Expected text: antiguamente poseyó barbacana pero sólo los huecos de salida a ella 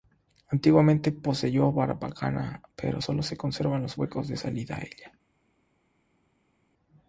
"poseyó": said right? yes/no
yes